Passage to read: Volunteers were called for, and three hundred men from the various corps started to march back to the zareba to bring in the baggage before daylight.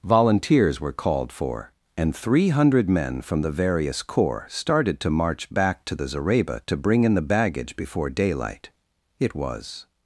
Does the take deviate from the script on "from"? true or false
false